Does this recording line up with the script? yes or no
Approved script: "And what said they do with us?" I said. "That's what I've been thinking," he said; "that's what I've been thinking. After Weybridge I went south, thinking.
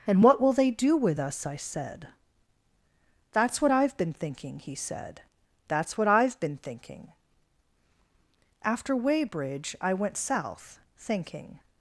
no